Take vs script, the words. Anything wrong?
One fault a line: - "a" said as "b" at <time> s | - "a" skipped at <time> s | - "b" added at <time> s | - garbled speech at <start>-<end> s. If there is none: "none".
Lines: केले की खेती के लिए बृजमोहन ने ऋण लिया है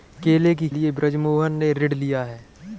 - "खेती के" skipped at 0.7 s